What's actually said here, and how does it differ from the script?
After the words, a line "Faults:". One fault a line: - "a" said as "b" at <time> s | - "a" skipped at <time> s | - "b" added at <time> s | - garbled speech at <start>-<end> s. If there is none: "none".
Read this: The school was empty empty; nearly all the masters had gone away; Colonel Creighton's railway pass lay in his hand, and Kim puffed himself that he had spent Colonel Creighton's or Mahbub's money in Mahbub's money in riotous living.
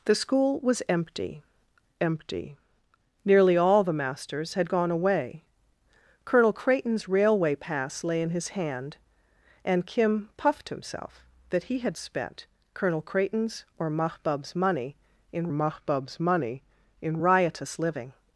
The school was empty empty; nearly all the masters had gone away; Colonel Creighton's railway pass lay in his hand, and Kim puffed himself that he had spent Colonel Creighton's or Mahbub's money in Mahbub's money in riotous living.
Faults:
none